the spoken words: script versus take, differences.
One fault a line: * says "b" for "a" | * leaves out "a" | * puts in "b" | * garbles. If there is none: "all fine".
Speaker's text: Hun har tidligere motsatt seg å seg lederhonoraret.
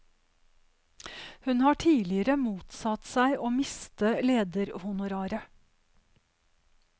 * says "miste" for "seg"